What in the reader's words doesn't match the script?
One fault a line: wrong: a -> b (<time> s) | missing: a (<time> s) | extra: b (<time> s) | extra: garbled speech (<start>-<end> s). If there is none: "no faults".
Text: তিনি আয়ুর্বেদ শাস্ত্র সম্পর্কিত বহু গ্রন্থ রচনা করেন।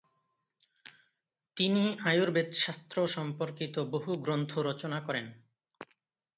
no faults